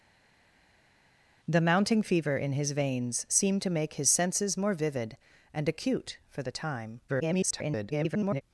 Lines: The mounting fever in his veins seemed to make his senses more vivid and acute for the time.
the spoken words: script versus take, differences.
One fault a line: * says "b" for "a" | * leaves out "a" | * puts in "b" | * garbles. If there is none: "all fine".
* garbles